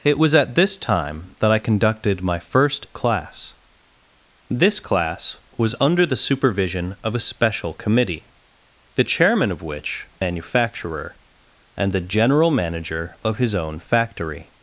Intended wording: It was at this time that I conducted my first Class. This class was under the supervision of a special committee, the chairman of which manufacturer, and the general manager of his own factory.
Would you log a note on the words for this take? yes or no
no